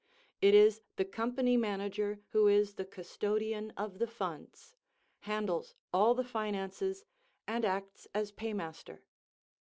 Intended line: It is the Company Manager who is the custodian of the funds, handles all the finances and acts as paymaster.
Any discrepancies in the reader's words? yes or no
no